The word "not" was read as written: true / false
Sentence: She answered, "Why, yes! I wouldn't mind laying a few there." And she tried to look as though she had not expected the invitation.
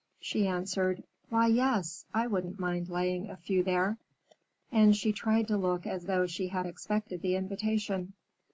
false